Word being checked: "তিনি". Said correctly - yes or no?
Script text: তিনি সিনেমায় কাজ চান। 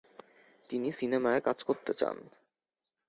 yes